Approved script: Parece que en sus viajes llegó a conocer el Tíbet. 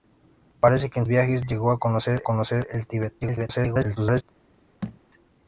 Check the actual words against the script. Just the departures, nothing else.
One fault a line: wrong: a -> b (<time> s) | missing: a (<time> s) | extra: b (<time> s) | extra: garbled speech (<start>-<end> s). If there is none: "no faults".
missing: sus (1.1 s)
extra: conocer (2.2 s)
extra: garbled speech (3.2-4.2 s)